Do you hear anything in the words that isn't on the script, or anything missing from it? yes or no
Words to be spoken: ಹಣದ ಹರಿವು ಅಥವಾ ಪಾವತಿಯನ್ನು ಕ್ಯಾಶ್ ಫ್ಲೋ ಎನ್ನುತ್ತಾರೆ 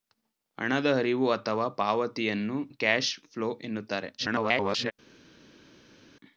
yes